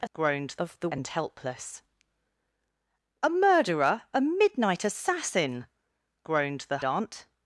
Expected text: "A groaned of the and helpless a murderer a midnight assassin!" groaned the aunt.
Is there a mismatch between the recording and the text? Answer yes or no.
no